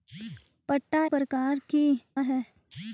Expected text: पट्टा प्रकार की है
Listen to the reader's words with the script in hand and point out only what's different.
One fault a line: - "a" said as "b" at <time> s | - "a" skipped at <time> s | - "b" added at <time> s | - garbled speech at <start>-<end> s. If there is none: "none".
none